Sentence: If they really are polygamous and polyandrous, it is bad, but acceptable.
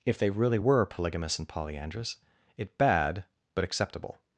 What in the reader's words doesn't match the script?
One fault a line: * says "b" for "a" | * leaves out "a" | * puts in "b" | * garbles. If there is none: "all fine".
* says "were" for "are"
* leaves out "is"